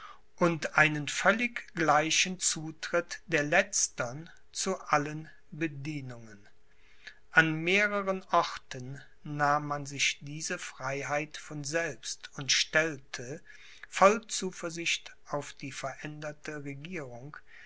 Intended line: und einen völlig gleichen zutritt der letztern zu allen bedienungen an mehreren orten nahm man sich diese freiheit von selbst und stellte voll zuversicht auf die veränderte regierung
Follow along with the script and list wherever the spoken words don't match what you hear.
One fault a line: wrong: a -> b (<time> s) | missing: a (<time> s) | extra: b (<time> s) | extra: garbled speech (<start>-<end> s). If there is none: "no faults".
no faults